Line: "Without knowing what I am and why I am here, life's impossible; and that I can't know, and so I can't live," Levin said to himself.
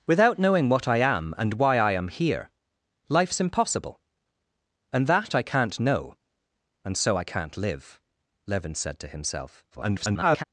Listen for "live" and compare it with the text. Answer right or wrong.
right